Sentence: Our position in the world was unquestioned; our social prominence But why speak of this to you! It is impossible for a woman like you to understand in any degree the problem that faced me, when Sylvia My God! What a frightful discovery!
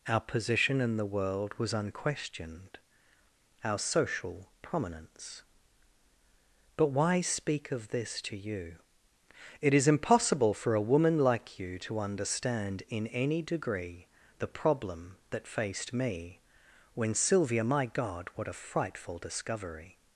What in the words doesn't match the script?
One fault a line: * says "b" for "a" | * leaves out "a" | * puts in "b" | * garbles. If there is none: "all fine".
all fine